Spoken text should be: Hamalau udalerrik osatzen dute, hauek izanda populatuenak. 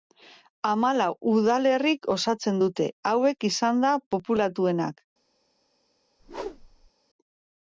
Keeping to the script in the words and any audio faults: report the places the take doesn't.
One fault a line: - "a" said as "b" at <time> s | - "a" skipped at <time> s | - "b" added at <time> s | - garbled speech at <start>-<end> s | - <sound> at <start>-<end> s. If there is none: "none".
- whoosh at 6.2-6.9 s